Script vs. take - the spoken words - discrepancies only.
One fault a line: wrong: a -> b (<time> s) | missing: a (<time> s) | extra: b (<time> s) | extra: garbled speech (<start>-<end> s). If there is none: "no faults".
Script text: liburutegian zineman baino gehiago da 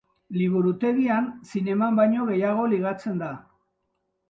extra: ligatzen (2.8 s)